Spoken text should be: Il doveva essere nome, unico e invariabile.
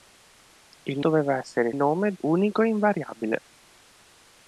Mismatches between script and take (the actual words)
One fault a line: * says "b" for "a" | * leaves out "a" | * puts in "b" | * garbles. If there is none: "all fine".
all fine